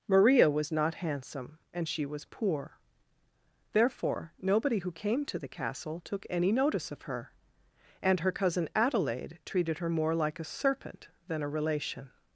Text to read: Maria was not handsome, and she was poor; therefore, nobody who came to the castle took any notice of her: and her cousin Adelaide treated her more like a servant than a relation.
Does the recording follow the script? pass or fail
fail